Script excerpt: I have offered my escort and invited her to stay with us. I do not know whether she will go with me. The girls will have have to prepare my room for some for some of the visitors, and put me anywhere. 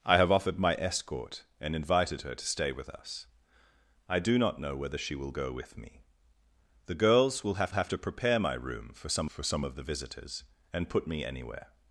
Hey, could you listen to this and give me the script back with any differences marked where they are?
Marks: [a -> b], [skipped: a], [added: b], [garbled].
I have offered my escort and invited her to stay with us. I do not know whether she will go with me. The girls will have have to prepare my room for some for some of the visitors, and put me anywhere.